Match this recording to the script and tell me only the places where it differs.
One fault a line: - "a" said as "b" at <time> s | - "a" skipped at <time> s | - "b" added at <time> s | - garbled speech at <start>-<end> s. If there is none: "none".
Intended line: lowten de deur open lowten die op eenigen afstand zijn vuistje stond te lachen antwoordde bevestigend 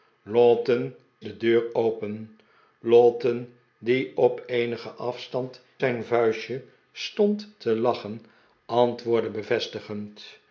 none